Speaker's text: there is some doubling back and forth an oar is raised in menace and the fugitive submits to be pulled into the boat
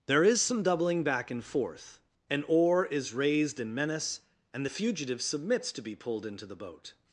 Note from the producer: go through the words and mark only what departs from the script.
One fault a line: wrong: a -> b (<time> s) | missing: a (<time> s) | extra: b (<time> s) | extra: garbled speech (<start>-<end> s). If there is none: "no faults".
no faults